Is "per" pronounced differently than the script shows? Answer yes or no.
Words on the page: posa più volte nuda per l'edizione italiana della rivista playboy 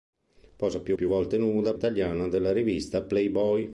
yes